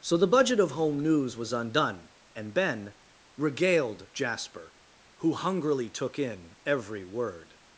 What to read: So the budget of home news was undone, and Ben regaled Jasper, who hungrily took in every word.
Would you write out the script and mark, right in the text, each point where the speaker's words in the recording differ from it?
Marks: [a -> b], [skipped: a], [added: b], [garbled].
So the budget of home news was undone, and Ben regaled Jasper, who hungrily took in every word.